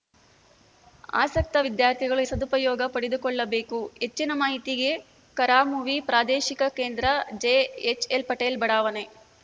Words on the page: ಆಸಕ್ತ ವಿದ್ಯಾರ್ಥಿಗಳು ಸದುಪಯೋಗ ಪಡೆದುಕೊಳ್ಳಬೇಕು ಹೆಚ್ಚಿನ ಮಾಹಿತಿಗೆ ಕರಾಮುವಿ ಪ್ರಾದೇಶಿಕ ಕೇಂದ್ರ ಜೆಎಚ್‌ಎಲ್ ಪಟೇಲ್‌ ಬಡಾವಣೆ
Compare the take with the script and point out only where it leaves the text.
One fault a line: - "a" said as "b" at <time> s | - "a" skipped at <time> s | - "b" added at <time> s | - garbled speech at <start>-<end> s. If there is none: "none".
none